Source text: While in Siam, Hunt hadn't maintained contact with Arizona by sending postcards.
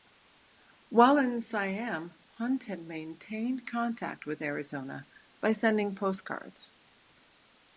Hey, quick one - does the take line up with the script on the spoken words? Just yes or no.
no